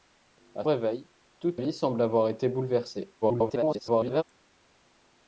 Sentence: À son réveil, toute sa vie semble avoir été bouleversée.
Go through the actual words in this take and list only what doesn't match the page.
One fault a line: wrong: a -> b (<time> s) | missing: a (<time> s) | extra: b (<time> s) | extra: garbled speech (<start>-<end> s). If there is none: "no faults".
missing: son (0.7 s)
missing: sa (1.6 s)
extra: garbled speech (3.2-4.2 s)